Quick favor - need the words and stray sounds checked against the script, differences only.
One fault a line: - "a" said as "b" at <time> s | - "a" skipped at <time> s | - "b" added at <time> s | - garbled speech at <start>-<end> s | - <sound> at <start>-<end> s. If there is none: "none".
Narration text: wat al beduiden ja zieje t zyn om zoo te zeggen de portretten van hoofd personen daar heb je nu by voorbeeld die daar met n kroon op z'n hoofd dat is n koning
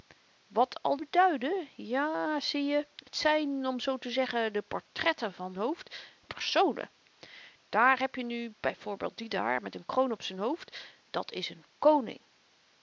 none